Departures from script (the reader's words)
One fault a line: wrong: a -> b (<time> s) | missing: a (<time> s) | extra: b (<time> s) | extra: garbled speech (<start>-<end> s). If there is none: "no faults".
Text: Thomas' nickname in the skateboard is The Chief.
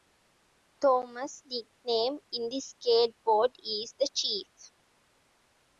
no faults